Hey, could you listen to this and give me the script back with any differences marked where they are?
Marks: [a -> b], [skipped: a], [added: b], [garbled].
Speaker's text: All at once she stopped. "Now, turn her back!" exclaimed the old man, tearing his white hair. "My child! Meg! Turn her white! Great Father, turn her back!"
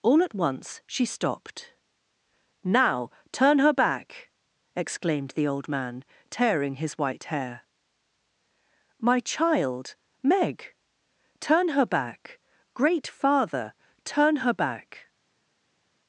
All at once she stopped. "Now, turn her back!" exclaimed the old man, tearing his white hair. "My child! Meg! Turn her [white! -> back] Great Father, turn her back!"